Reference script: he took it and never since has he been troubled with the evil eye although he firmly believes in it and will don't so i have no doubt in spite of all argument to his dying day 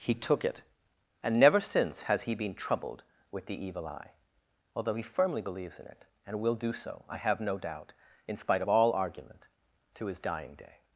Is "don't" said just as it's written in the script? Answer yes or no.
no